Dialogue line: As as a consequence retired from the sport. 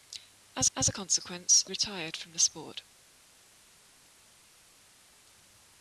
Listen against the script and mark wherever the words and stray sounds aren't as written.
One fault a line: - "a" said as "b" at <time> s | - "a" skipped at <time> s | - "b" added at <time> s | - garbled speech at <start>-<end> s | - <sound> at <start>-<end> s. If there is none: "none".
none